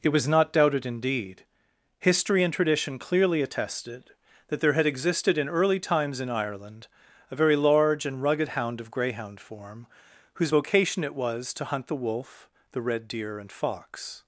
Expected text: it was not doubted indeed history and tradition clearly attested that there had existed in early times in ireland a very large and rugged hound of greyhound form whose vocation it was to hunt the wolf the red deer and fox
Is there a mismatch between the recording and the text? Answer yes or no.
no